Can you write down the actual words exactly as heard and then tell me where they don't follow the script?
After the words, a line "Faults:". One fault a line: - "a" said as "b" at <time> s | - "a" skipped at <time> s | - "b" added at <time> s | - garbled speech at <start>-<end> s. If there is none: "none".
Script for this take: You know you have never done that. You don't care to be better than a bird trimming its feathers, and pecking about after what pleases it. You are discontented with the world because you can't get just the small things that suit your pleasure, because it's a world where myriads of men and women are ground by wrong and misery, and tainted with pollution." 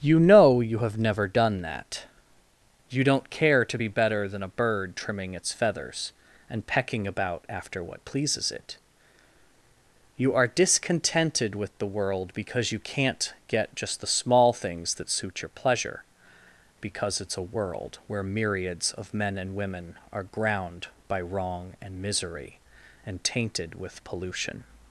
You know you have never done that. You don't care to be better than a bird trimming its feathers, and pecking about after what pleases it. You are discontented with the world because you can't get just the small things that suit your pleasure, because it's a world where myriads of men and women are ground by wrong and misery, and tainted with pollution."
Faults:
none